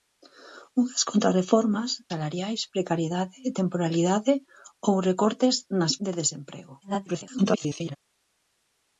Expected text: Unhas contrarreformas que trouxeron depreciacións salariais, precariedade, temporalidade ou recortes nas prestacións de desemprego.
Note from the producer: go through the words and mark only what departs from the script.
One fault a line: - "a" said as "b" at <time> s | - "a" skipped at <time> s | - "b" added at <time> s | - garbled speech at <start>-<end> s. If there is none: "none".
- "que trouxeron depreciacións" skipped at 1.9 s
- "prestacións" skipped at 5.9 s
- garbled speech at 6.8-8.0 s